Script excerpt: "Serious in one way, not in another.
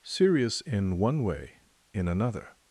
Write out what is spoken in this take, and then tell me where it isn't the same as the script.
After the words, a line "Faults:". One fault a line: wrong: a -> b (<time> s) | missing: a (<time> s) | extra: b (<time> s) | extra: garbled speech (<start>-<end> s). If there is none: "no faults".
"Serious in one way, in another.
Faults:
missing: not (1.6 s)